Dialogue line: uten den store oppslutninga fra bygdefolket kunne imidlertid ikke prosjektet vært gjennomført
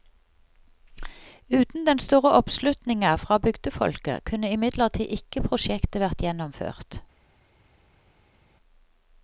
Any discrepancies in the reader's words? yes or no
no